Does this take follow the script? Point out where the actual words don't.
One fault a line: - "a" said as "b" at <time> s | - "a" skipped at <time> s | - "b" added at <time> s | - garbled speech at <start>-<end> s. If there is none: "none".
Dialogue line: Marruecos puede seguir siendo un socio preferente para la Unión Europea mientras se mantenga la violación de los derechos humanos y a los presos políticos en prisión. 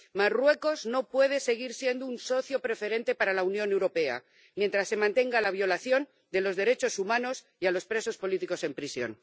- "no" added at 0.8 s